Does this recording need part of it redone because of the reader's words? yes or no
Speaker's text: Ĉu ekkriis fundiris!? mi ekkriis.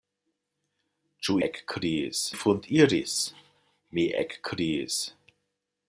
no